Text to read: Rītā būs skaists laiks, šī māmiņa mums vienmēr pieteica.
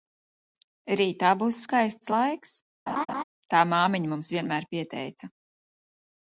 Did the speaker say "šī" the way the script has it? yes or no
no